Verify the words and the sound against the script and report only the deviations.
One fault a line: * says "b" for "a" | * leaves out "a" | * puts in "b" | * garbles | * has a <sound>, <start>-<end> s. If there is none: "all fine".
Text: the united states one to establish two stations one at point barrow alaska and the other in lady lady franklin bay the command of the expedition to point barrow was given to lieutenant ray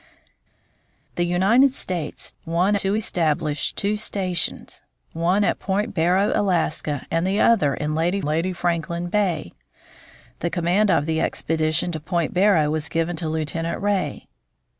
all fine